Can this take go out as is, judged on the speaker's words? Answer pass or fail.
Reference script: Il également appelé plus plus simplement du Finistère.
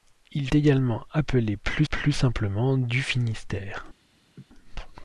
pass